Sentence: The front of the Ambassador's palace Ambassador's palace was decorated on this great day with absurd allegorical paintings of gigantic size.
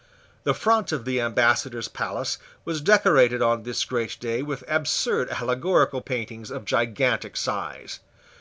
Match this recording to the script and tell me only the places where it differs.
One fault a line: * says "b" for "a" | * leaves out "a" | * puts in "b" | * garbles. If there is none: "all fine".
* leaves out "Ambassador's palace"